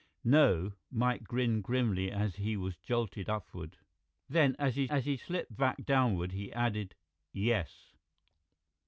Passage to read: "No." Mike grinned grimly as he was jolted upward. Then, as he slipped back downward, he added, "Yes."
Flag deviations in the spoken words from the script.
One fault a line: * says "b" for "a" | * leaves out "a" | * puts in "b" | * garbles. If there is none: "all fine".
* puts in "as he"